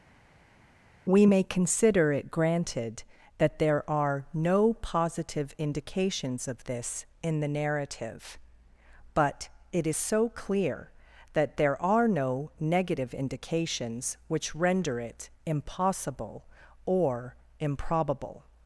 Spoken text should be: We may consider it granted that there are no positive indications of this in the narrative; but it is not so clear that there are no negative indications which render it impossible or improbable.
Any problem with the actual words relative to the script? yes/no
yes